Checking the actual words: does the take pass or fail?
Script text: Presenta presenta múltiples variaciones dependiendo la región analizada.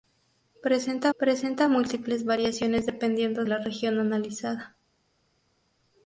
pass